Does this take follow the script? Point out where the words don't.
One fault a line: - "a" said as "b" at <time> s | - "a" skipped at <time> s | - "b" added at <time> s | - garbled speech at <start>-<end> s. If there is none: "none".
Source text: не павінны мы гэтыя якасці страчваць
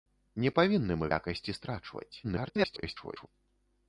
- "гэтыя" skipped at 1.1 s
- garbled speech at 2.2-3.3 s